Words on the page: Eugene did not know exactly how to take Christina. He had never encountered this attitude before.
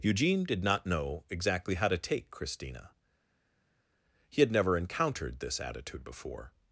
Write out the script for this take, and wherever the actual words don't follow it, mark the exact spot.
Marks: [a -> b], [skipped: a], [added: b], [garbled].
Eugene did not know exactly how to take Christina. He had never encountered this attitude before.